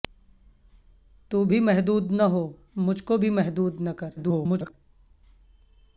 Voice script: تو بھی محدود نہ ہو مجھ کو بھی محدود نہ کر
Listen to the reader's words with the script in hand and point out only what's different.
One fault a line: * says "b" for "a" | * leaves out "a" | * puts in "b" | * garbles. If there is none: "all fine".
* garbles